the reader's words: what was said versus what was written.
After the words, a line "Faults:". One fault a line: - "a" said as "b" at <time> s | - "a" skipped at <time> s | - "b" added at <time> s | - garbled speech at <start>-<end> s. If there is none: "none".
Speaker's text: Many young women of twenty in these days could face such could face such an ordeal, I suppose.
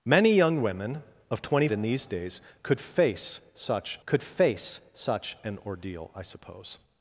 Many young women of twenty in these days could face such could face such an ordeal, I suppose.
Faults:
none